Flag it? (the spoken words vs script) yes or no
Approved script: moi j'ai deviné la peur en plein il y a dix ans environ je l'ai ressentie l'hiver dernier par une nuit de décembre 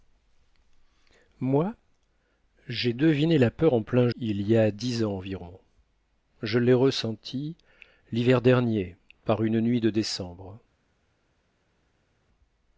no